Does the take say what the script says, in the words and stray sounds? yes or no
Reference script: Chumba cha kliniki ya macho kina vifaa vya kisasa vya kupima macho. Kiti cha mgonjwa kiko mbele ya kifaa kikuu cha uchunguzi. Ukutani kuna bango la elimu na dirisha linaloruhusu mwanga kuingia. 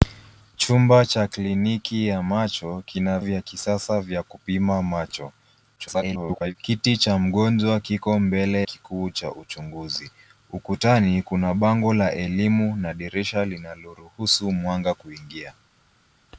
no